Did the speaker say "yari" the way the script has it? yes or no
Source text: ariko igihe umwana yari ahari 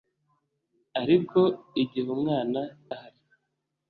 no